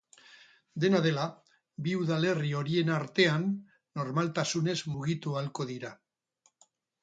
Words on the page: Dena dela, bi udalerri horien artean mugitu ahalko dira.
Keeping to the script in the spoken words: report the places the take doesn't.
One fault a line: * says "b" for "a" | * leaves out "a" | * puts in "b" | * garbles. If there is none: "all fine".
* puts in "normaltasunez"